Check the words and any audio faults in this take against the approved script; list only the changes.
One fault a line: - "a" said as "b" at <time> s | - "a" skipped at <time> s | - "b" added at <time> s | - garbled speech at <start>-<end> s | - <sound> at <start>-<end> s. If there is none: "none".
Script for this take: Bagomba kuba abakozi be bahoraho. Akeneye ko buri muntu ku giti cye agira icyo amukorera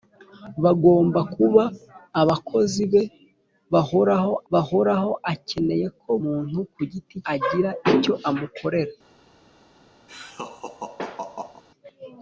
- "bahoraho" added at 4.5 s
- "buri" skipped at 6.1 s
- "cye" skipped at 7.2 s
- laugh at 10.1-11.6 s